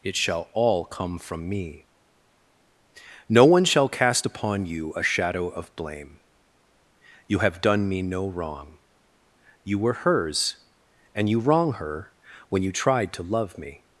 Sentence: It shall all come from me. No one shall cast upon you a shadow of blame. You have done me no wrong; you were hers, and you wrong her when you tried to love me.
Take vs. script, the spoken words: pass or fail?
pass